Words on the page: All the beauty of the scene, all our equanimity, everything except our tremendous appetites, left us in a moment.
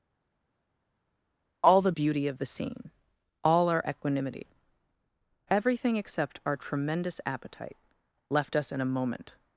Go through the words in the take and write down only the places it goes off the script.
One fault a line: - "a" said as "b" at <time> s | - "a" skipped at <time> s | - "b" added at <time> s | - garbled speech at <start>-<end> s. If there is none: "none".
- "appetites" said as "appetite" at 7.2 s